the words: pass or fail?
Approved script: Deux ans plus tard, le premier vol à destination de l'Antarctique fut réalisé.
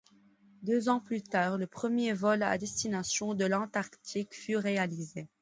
pass